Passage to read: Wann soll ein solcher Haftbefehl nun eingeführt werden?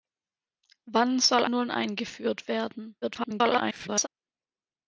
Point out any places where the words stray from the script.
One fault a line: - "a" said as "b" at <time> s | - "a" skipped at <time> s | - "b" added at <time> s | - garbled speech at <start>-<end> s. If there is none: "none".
- "ein solcher Haftbefehl" skipped at 1.4 s
- garbled speech at 3.0-4.1 s